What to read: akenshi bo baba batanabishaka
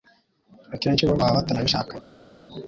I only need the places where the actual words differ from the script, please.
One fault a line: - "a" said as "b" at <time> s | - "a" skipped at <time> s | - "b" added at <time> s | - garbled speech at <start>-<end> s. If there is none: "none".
none